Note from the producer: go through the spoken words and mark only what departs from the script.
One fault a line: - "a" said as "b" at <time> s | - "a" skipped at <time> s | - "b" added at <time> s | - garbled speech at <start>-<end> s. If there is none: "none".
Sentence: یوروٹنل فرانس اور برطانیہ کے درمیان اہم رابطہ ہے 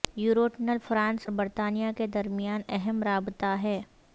- "اور" skipped at 1.3 s